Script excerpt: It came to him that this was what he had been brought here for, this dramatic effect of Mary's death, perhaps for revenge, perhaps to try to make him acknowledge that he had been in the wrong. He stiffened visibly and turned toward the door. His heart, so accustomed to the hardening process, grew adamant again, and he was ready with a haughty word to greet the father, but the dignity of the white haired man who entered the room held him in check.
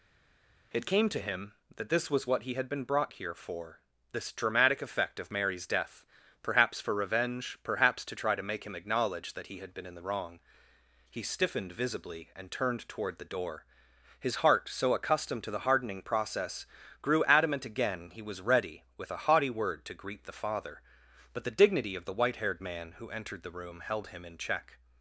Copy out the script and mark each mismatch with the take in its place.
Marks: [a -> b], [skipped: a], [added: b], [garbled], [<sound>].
It came to him that this was what he had been brought here for, this dramatic effect of Mary's death, perhaps for revenge, perhaps to try to make him acknowledge that he had been in the wrong. He stiffened visibly and turned toward the door. His heart, so accustomed to the hardening process, grew adamant again, [skipped: and] he was ready with a haughty word to greet the father, but the dignity of the white haired man who entered the room held him in check.